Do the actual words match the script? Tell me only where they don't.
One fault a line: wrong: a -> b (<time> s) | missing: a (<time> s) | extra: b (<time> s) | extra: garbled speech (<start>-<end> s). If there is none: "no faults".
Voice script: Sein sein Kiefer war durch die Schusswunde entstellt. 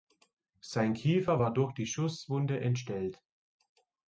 missing: sein (0.9 s)